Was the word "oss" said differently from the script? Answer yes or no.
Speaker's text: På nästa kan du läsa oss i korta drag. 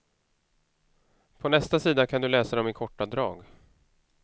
yes